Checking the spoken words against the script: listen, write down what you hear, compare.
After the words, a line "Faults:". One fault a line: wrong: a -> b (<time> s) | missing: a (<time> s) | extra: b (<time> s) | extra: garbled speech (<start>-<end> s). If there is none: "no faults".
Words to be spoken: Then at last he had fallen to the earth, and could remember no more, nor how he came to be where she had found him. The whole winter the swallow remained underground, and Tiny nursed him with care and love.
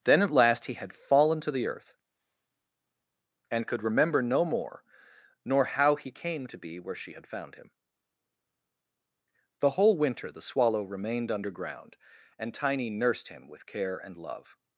Then at last he had fallen to the earth, and could remember no more, nor how he came to be where she had found him. The whole winter the swallow remained underground, and Tiny nursed him with care and love.
Faults:
no faults